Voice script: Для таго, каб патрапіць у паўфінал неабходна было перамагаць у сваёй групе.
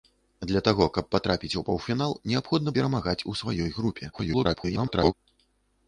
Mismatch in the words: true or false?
true